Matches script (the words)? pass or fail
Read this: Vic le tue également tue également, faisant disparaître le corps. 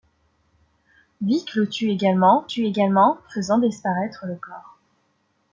pass